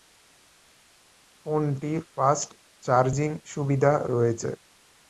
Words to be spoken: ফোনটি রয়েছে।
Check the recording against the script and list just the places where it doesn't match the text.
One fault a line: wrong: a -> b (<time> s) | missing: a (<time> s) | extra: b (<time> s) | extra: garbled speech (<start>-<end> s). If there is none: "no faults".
extra: ফাস্ট চার্জিং সুবিধা (2.1 s)